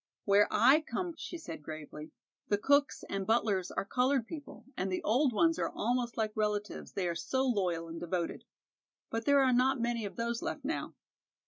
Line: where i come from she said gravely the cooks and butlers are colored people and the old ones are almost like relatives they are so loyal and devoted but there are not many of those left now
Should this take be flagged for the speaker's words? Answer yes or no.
yes